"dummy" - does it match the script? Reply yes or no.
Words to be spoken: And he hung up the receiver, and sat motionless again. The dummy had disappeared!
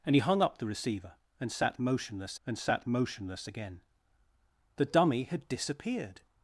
yes